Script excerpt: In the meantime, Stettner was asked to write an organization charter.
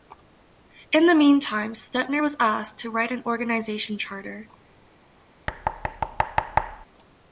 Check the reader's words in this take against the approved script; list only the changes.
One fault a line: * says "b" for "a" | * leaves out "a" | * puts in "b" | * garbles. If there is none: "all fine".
all fine